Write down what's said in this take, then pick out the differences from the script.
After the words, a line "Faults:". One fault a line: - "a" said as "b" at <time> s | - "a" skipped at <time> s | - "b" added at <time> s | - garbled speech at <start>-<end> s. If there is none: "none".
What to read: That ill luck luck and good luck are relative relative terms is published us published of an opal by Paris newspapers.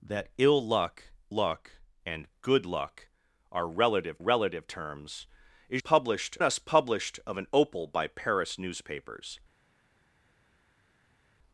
That ill luck luck and good luck are relative relative terms is published us published of an opal by Paris newspapers.
Faults:
none